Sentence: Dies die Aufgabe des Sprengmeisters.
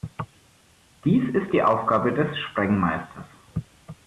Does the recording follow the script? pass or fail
fail